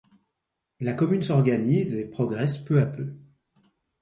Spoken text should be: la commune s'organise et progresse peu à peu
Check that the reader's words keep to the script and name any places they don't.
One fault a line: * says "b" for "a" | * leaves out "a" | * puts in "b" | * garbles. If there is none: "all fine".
all fine